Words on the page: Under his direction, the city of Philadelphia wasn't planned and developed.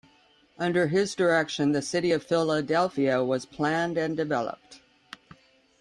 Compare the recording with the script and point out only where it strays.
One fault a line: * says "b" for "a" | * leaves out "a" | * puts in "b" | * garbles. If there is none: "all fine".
* says "was" for "wasn't"